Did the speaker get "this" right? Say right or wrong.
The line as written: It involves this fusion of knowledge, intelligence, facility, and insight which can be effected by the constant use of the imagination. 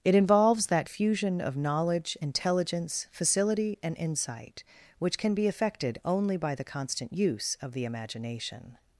wrong